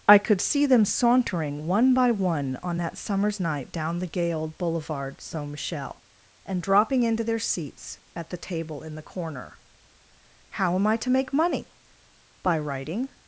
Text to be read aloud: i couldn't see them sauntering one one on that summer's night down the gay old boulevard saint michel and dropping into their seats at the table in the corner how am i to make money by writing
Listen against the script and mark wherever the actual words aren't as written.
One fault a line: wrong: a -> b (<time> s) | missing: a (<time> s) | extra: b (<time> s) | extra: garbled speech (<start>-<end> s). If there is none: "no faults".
wrong: couldn't -> could (0.2 s)
extra: by (1.9 s)